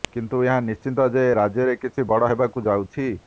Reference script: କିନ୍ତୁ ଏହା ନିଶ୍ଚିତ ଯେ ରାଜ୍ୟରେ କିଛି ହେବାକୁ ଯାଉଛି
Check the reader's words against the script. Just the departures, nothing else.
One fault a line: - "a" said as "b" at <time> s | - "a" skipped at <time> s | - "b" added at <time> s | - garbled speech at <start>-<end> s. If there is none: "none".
- "ବଡ଼" added at 2.1 s